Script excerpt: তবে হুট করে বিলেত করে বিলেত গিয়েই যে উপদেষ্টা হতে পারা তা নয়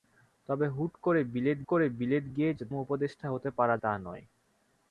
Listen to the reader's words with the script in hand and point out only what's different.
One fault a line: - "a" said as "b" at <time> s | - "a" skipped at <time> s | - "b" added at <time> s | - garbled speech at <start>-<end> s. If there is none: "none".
none